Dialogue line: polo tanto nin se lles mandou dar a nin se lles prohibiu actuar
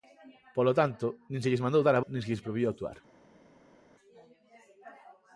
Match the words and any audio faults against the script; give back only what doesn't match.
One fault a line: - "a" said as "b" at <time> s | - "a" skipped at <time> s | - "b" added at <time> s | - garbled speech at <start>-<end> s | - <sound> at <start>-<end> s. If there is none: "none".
none